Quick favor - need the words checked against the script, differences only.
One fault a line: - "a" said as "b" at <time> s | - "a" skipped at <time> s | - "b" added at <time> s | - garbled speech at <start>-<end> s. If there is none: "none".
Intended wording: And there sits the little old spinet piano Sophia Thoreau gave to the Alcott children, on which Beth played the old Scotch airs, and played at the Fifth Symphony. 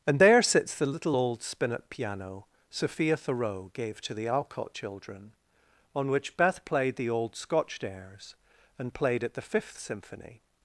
none